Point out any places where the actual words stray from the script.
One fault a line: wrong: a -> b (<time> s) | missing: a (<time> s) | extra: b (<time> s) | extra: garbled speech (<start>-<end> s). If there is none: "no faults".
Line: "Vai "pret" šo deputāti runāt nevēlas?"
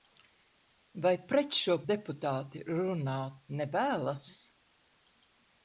no faults